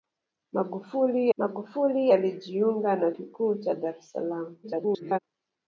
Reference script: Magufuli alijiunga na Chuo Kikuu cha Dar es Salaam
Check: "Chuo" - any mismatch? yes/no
yes